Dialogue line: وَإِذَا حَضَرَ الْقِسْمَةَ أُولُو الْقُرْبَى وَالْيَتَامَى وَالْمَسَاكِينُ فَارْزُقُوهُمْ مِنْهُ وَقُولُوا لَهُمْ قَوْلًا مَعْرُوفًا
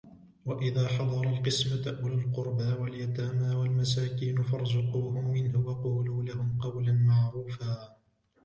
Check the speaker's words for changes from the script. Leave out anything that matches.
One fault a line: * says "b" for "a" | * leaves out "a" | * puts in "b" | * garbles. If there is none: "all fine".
all fine